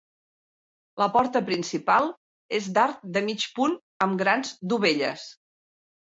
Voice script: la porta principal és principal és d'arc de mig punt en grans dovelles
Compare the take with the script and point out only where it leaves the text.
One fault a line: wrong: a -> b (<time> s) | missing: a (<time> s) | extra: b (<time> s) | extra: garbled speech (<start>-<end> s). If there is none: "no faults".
missing: principal és (2.7 s)
wrong: en -> amb (4.1 s)